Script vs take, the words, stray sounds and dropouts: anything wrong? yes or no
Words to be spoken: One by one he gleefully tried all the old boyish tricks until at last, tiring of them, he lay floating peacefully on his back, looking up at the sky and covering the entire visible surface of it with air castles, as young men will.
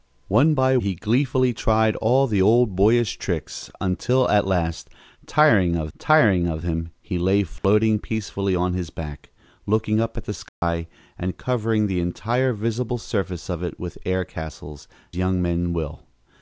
yes